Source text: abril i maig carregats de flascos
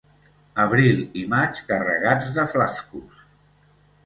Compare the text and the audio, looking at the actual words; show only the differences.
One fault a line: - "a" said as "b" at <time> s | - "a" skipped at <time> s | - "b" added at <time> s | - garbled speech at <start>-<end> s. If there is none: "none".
none